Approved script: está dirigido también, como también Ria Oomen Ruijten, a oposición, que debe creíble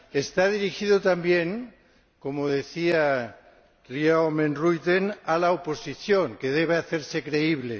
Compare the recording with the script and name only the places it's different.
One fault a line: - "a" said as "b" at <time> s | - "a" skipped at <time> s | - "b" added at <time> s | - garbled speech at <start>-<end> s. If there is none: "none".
- "también" said as "decía" at 2.5 s
- "la" added at 5.4 s
- "hacerse" added at 6.8 s